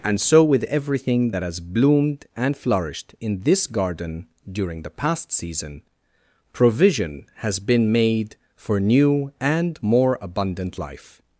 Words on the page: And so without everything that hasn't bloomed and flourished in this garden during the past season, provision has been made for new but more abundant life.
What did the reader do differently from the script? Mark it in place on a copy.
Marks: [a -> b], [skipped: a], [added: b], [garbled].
And so [without -> with] everything that [hasn't -> has] bloomed and flourished in this garden during the past season, provision has been made for new [but -> and] more abundant life.